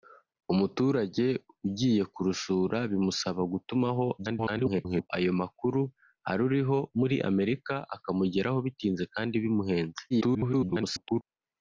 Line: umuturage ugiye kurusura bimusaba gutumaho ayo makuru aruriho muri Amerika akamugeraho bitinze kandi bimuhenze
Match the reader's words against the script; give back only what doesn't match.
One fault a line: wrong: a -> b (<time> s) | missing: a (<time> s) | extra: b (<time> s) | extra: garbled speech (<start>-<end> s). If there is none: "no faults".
extra: garbled speech (4.2-5.1 s)
extra: garbled speech (10.1-11.2 s)